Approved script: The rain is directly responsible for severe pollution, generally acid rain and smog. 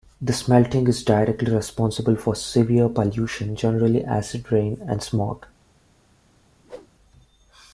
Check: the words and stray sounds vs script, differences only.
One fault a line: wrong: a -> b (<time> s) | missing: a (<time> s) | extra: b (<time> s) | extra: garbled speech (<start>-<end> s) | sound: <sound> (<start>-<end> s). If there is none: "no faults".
wrong: rain -> smelting (0.3 s)
sound: whoosh (6.6-6.9 s)